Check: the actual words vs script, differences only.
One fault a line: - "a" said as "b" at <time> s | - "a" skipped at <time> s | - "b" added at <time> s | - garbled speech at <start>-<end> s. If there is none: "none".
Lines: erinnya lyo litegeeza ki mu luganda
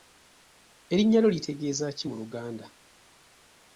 none